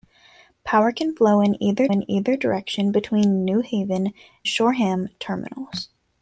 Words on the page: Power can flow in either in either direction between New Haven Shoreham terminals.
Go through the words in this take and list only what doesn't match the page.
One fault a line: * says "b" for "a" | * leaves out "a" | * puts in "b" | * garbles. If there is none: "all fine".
all fine